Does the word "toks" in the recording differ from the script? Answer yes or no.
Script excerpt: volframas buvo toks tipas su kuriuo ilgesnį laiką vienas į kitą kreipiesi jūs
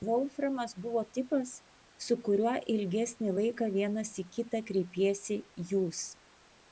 yes